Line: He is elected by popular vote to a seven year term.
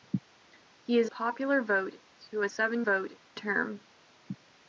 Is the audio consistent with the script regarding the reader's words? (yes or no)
no